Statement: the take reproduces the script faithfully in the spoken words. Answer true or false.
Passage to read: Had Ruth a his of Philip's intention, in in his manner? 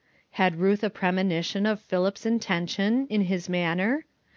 false